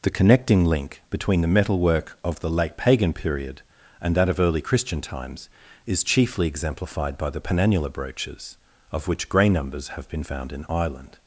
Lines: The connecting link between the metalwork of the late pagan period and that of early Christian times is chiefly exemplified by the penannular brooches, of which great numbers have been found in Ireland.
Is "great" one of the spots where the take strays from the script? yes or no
yes